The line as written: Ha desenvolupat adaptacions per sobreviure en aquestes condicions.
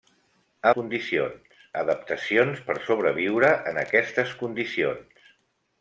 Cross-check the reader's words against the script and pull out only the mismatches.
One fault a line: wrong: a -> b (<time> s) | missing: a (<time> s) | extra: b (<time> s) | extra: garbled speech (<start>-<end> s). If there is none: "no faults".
wrong: desenvolupat -> condicions (0.8 s)